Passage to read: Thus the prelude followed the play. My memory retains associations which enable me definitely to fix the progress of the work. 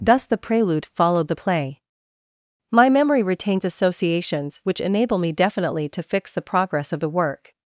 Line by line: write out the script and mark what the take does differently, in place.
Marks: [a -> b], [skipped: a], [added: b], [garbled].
Thus the prelude followed the play. My memory retains associations which enable me definitely to fix the progress of the work.